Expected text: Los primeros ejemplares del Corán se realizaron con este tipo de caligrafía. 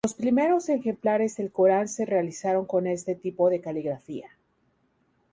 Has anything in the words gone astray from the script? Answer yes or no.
no